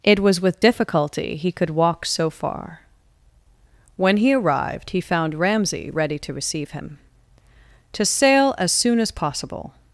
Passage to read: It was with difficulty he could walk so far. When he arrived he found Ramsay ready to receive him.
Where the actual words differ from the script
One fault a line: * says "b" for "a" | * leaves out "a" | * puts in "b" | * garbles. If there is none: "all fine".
* puts in "To sail as soon as possible"